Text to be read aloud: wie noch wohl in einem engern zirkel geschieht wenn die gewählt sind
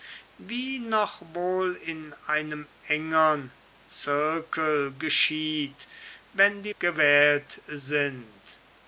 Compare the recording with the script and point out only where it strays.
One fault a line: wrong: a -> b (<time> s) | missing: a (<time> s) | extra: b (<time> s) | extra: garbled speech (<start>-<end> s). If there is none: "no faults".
no faults